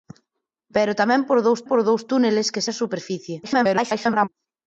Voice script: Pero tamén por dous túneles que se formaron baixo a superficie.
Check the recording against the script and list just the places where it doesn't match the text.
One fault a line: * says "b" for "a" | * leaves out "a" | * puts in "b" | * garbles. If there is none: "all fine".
* puts in "por dous"
* leaves out "se formaron baixo"
* garbles